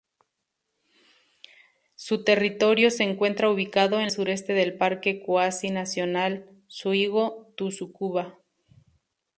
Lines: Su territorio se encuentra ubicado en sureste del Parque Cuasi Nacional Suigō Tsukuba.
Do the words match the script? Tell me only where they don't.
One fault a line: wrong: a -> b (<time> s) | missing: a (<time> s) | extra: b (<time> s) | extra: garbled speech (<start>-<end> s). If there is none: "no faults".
no faults